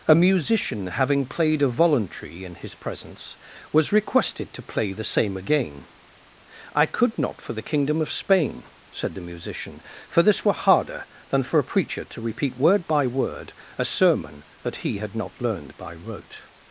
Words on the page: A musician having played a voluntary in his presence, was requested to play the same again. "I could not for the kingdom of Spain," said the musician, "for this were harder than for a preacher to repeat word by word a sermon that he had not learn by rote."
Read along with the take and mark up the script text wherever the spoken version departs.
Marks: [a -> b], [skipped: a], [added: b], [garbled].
A musician having played a voluntary in his presence, was requested to play the same again. "I could not for the kingdom of Spain," said the musician, "for this were harder than for a preacher to repeat word by word a sermon that he had not [learn -> learned] by rote."